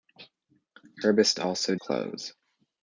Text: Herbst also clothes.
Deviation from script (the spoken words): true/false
false